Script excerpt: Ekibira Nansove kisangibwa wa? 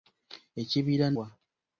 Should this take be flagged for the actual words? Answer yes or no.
yes